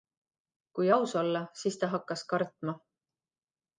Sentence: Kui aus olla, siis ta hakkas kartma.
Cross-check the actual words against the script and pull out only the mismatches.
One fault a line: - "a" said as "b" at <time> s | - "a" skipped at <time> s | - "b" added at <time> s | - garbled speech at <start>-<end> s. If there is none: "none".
none